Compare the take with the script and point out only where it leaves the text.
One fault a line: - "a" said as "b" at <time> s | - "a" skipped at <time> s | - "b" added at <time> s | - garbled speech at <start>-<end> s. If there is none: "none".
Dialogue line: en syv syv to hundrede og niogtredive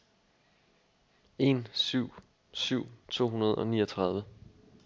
none